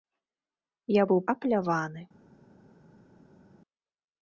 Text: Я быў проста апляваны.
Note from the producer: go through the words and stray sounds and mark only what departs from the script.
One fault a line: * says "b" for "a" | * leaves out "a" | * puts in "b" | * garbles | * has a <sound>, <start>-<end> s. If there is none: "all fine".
* leaves out "проста"